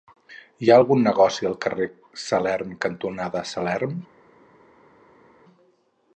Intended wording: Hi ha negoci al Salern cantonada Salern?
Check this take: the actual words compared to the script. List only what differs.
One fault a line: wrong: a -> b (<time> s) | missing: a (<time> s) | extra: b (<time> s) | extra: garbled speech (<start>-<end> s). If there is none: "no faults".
extra: algun (0.8 s)
extra: carrer (1.7 s)